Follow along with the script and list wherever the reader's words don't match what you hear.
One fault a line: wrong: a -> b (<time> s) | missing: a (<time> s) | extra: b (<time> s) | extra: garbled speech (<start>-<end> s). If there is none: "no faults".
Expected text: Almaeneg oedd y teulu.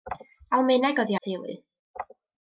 no faults